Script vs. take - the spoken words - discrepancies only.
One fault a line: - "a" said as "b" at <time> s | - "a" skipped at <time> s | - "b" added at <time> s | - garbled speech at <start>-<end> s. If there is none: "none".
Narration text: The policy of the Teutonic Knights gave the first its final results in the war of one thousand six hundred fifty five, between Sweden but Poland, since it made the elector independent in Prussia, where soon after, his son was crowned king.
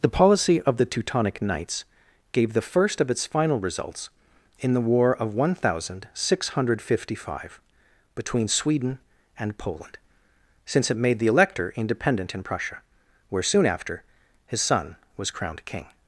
- "of" added at 3.0 s
- "but" said as "and" at 9.4 s